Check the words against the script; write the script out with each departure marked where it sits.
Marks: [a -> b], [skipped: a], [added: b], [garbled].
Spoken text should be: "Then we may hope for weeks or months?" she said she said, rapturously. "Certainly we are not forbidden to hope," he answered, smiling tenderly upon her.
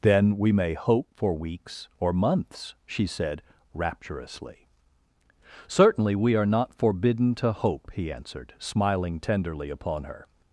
"Then we may hope for weeks or months?" she said [skipped: she said,] rapturously. "Certainly we are not forbidden to hope," he answered, smiling tenderly upon her.